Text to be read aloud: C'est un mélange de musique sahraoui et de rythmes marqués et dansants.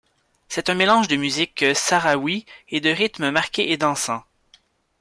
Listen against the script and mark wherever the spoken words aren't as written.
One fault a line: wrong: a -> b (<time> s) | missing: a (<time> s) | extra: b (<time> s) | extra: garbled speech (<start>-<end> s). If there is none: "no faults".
no faults